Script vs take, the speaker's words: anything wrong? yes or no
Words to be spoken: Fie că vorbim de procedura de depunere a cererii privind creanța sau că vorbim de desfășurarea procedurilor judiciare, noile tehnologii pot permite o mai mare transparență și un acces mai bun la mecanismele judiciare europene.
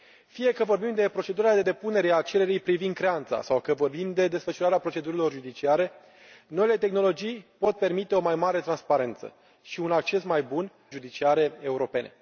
yes